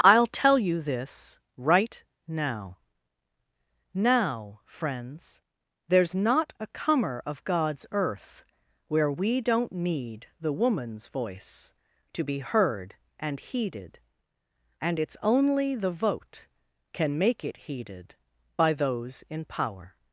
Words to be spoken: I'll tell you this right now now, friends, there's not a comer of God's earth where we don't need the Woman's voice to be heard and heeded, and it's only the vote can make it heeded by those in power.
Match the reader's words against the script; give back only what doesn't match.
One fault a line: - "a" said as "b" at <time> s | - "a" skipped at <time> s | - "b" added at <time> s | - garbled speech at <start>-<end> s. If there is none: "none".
none